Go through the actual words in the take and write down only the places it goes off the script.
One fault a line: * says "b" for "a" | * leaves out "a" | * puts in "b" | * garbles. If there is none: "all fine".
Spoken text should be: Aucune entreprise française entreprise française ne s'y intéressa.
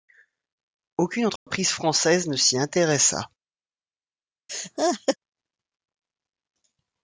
* leaves out "entreprise française"